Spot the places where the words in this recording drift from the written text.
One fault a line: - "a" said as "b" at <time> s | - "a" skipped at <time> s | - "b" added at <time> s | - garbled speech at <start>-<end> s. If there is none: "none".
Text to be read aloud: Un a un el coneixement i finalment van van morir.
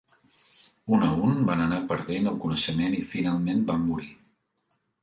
- "van anar perdent" added at 1.5 s
- "van" skipped at 3.9 s